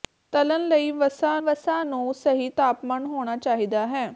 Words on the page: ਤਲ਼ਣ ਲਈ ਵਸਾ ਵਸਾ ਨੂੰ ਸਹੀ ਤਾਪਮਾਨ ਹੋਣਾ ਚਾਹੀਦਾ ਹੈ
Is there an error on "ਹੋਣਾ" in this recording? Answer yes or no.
no